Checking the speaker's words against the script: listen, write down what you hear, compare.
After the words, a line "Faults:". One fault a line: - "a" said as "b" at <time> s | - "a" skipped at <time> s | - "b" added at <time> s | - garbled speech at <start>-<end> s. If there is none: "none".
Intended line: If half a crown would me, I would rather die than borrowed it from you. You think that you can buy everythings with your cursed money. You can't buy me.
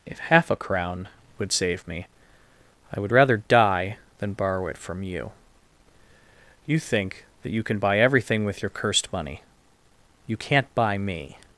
If half a crown would save me, I would rather die than borrow it from you. You think that you can buy everything with your cursed money. You can't buy me.
Faults:
- "save" added at 1.5 s
- "borrowed" said as "borrow" at 4.3 s
- "everythings" said as "everything" at 8.0 s